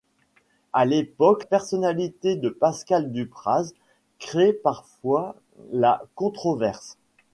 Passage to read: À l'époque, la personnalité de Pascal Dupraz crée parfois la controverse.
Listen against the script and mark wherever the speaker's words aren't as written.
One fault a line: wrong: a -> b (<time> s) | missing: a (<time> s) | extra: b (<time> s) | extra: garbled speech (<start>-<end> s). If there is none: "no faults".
missing: la (1.4 s)